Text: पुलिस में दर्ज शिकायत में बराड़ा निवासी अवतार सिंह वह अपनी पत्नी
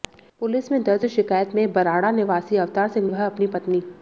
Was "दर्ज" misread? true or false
false